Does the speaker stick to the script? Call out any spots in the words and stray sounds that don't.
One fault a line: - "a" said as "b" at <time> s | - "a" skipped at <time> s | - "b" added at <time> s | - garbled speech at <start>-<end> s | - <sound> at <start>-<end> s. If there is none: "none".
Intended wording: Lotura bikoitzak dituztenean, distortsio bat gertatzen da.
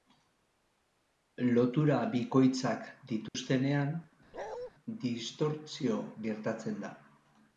- dropout at 3.3-3.3 s
- bark at 4.3-4.7 s
- "bat" skipped at 6.0 s